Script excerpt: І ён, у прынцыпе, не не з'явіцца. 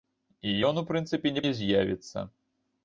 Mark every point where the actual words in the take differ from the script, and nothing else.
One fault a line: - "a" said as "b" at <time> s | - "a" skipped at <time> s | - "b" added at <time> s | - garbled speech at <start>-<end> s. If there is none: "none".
none